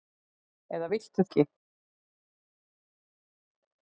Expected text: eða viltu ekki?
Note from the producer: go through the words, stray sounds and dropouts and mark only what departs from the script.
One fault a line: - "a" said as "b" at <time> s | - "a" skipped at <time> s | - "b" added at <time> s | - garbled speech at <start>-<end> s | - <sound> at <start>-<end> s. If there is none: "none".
none